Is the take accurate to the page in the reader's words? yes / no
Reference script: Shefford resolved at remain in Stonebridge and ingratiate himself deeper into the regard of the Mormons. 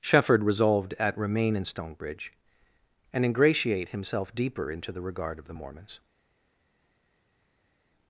yes